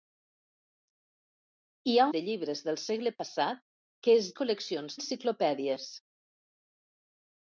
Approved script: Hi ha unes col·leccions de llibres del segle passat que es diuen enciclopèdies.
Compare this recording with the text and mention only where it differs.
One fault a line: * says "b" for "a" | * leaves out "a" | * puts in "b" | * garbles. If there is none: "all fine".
* leaves out "unes col·leccions"
* says "col·leccions" for "diuen"